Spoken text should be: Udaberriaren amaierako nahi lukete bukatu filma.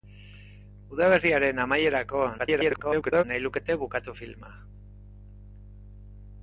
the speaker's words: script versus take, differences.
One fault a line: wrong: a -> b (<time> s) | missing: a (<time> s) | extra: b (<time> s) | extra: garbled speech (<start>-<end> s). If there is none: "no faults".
extra: garbled speech (2.4-3.2 s)